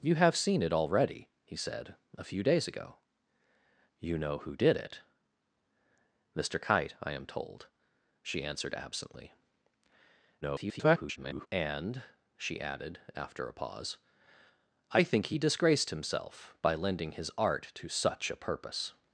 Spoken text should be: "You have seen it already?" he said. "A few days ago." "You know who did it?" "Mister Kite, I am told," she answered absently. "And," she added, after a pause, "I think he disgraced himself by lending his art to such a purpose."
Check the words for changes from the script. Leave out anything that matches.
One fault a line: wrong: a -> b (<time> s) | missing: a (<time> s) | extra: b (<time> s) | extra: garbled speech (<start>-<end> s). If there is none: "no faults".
extra: garbled speech (10.4-11.5 s)